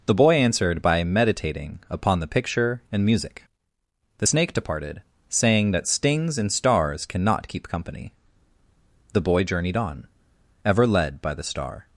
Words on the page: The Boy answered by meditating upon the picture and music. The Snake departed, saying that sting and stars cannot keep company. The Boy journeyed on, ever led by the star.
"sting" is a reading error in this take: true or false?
true